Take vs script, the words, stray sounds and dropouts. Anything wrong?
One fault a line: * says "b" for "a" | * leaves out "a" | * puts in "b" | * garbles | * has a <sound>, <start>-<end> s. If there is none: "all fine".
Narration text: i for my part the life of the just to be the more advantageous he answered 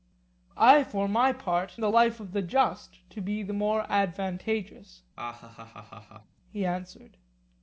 * has a laugh, 5.2-6.4 s